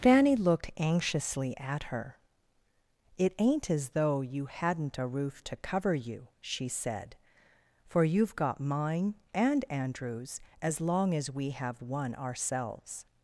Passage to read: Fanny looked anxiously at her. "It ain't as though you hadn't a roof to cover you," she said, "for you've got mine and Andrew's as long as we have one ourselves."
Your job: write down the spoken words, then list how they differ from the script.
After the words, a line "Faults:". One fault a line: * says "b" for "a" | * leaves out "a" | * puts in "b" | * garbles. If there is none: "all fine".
Fanny looked anxiously at her. "It ain't as though you hadn't a roof to cover you," she said, "for you've got mine and Andrew's as long as we have one ourselves."
Faults:
all fine